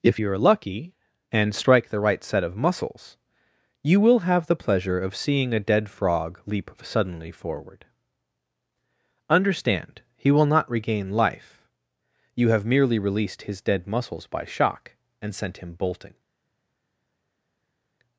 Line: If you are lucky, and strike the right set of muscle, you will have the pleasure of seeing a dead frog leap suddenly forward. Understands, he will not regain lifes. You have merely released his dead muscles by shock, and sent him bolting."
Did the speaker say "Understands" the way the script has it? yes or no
no